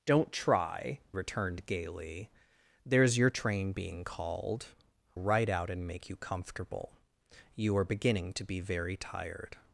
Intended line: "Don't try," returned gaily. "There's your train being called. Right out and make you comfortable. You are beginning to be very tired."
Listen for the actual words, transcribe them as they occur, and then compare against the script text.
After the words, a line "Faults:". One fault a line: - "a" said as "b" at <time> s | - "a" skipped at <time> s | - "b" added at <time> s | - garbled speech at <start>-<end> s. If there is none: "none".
"Don't try," returned gaily. "There's your train being called. Right out and make you comfortable. You are beginning to be very tired."
Faults:
none